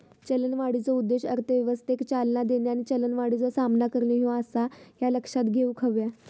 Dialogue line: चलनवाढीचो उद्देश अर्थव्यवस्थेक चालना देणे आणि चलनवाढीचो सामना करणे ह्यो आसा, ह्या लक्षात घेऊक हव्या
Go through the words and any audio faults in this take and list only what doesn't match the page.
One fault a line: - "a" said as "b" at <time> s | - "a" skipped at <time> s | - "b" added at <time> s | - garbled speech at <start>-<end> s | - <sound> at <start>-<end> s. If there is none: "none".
none